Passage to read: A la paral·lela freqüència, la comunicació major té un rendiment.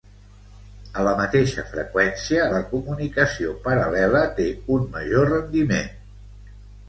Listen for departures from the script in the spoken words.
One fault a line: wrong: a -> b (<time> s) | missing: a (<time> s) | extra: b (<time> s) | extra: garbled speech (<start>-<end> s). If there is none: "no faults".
wrong: paral·lela -> mateixa (1.2 s)
wrong: major -> paral·lela (3.7 s)
extra: major (5.0 s)